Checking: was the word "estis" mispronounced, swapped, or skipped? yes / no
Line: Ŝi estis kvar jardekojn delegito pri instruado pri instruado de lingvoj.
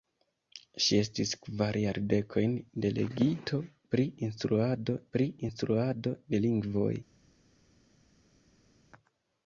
no